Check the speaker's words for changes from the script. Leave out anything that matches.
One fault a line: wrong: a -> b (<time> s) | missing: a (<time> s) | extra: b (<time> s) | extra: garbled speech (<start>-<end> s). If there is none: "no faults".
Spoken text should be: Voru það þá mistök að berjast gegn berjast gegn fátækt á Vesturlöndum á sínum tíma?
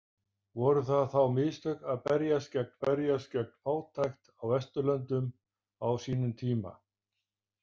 no faults